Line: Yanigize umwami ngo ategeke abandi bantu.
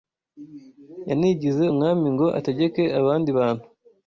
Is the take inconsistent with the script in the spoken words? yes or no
no